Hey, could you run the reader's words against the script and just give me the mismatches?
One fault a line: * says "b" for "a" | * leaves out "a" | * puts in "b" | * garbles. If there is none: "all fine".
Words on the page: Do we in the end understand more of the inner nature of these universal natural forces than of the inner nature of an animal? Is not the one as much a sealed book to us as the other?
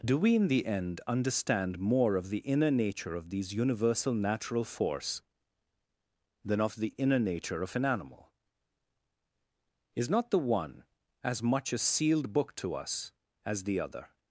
* says "force" for "forces"